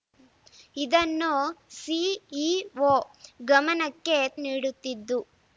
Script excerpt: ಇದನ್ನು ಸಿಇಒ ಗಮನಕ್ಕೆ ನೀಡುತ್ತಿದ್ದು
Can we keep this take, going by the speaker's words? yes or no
yes